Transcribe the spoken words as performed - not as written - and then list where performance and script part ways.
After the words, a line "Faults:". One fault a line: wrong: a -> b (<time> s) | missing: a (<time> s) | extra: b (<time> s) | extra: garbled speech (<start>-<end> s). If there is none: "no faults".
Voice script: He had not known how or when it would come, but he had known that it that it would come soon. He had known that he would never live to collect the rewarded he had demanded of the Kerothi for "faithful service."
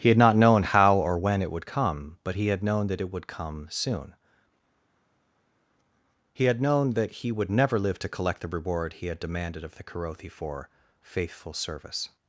He had not known how or when it would come, but he had known that it would come soon. He had known that he would never live to collect the reward he had demanded of the Kerothi for "faithful service."
Faults:
missing: that it (3.1 s)
wrong: rewarded -> reward (8.5 s)